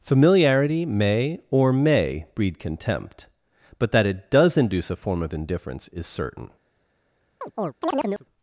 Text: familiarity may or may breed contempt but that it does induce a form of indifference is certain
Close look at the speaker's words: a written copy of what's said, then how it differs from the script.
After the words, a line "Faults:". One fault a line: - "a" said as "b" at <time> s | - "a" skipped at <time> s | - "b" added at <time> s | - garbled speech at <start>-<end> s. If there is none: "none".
familiarity may or may breed contempt but that it does induce a form of indifference is certain
Faults:
none